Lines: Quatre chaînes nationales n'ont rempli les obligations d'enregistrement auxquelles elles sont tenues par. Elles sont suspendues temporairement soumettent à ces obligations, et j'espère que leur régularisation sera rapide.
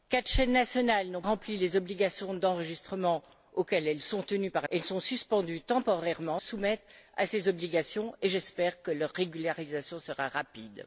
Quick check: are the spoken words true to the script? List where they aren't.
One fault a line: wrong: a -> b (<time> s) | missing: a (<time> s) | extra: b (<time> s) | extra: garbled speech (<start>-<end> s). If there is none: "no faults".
no faults